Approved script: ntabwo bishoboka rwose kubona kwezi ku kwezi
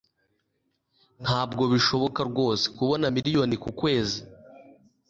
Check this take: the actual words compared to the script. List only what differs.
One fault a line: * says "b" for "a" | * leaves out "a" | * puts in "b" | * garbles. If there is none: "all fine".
* says "miliyoni" for "kwezi"